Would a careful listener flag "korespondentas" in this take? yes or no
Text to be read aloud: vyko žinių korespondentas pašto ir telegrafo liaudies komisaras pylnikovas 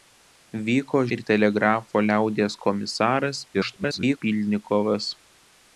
yes